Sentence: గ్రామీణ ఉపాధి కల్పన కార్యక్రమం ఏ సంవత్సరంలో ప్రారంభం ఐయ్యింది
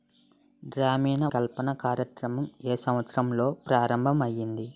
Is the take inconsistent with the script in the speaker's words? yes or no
yes